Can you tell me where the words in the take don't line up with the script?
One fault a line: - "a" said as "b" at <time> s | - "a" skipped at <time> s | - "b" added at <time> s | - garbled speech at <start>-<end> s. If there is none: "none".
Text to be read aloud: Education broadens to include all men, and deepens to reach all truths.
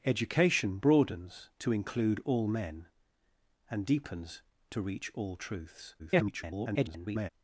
- garbled speech at 6.0-7.3 s